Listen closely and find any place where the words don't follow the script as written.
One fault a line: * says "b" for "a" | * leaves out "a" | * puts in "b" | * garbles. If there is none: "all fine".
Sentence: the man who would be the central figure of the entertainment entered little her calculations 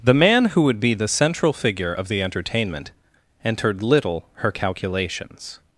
all fine